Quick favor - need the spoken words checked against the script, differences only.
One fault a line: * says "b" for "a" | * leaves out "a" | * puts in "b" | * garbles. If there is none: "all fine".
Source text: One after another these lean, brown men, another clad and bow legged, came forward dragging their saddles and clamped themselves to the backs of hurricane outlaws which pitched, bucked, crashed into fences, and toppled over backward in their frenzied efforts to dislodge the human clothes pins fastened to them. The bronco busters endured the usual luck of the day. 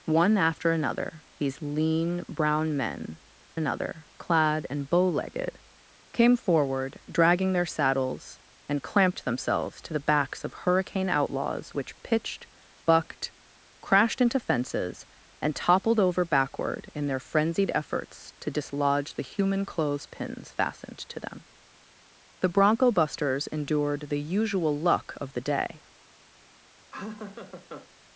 all fine